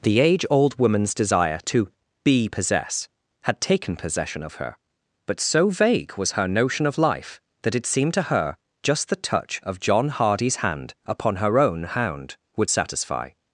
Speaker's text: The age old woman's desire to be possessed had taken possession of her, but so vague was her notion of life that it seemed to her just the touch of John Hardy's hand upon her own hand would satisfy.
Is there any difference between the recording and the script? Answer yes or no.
yes